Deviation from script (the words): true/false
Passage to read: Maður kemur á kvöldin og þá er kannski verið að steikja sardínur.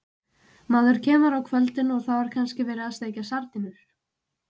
false